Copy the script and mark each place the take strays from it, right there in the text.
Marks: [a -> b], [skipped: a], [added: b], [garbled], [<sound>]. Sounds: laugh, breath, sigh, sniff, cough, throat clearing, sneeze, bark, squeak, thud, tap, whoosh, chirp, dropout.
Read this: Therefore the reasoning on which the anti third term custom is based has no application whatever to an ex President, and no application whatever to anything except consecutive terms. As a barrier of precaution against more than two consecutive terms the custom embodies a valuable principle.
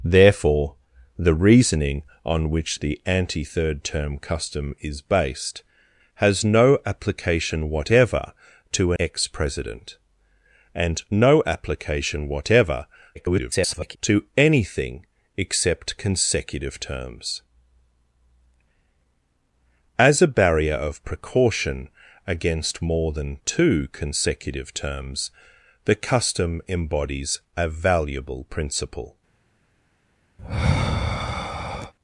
Therefore the reasoning on which the anti third term custom is based has no application whatever to [skipped: an] ex President, and no application whatever [garbled] to anything except consecutive terms. As a barrier of precaution against more than two consecutive terms the custom embodies a valuable principle. [sigh]